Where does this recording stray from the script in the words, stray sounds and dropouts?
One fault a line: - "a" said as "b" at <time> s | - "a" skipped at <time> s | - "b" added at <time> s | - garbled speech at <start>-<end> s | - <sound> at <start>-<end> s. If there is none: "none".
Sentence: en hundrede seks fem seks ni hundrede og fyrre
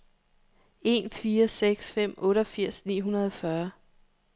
- "hundrede" said as "fire" at 1.1 s
- "seks" said as "otteogfirs" at 2.2 s